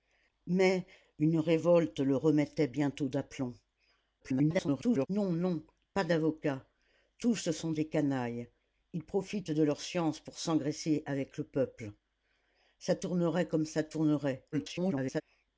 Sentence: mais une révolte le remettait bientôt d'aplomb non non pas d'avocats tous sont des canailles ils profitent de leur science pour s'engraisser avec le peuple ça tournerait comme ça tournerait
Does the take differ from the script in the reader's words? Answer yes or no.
yes